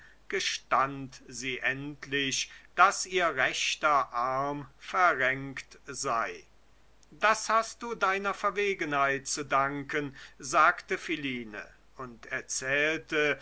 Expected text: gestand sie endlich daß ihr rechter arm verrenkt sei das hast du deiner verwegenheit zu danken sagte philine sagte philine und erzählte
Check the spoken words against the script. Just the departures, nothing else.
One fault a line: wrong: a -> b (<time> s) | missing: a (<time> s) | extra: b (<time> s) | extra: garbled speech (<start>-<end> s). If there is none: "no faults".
missing: sagte philine (11.7 s)